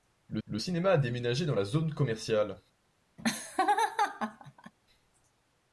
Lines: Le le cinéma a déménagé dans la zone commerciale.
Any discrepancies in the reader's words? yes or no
no